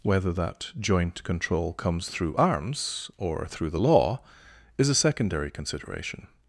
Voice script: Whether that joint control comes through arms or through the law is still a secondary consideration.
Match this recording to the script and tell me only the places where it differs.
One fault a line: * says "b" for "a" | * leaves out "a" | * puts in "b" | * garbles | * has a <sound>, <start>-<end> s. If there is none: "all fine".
* leaves out "still"